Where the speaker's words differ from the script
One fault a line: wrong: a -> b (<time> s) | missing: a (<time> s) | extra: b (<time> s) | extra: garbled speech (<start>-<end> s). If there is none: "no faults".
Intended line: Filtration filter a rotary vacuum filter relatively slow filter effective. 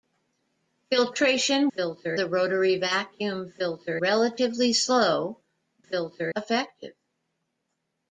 no faults